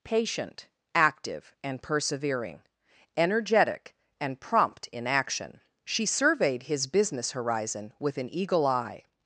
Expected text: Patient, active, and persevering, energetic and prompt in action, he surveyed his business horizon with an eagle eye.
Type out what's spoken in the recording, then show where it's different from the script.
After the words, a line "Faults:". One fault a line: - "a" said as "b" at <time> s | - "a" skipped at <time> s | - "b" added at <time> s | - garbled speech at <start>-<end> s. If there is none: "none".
Patient, active, and persevering, energetic and prompt in action, she surveyed his business horizon with an eagle eye.
Faults:
- "he" said as "she" at 5.8 s